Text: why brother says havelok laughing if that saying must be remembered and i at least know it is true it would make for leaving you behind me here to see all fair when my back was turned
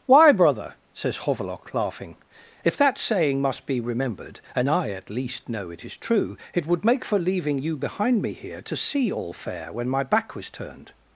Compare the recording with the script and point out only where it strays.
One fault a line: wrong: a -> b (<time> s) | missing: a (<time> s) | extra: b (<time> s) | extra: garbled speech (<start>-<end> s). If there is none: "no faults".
no faults